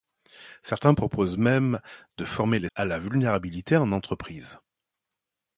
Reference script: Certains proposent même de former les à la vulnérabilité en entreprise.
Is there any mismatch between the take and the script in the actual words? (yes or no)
no